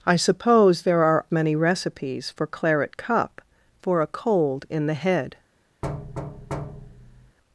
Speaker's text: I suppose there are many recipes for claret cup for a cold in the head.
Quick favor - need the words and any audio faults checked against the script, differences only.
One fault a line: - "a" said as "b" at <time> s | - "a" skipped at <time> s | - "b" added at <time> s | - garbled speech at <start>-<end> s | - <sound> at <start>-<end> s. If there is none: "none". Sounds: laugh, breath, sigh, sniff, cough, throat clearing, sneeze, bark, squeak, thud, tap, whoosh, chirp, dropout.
- thud at 5.8-7.4 s